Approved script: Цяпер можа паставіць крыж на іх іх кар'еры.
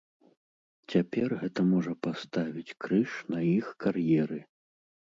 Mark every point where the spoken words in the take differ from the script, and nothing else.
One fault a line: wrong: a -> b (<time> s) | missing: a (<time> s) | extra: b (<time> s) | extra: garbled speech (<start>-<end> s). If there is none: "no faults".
extra: гэта (1.4 s)
missing: іх (3.7 s)